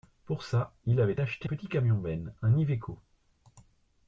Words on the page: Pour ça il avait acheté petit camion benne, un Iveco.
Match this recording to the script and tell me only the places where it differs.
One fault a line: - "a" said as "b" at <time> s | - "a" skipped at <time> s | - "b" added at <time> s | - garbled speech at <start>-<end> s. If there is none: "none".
none